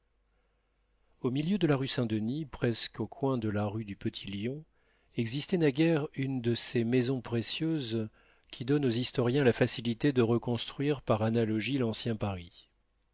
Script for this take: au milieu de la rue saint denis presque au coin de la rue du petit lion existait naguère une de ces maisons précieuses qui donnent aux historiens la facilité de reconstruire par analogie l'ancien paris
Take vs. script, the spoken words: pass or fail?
pass